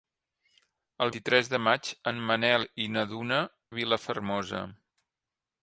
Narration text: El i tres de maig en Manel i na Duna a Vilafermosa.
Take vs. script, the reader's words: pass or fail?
pass